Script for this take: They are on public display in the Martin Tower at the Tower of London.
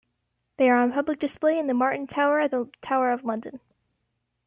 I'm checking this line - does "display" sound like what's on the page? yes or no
yes